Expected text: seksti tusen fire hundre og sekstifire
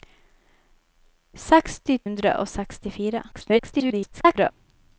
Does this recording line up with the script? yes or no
no